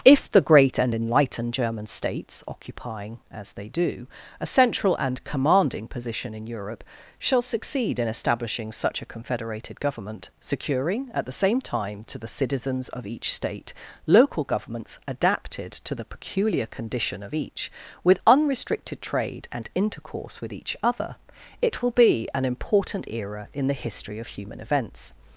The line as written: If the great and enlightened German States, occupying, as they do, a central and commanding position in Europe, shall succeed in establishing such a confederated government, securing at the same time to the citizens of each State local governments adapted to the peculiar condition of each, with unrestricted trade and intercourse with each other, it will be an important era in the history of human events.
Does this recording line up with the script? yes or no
yes